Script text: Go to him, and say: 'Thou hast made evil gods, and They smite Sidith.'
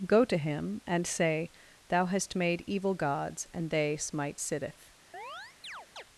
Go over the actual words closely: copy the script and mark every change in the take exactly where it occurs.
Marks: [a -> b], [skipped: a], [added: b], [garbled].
Go to him, and say: 'Thou hast made evil gods, and They smite Sidith.'